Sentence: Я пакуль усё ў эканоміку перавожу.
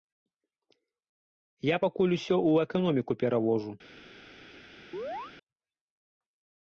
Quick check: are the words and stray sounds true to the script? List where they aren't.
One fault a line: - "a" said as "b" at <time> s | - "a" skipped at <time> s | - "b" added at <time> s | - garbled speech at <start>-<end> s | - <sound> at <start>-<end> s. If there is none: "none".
- chirp at 4.9-5.3 s